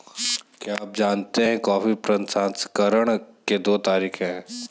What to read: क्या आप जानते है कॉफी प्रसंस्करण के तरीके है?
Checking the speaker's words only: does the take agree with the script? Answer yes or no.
no